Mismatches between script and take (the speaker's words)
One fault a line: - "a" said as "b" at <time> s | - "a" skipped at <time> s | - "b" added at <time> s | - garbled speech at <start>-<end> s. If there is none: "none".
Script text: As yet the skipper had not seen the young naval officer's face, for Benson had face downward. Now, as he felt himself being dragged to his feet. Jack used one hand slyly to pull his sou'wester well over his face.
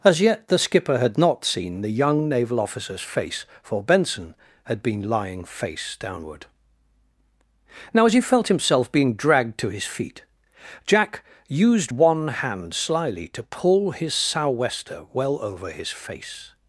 - "been lying" added at 4.8 s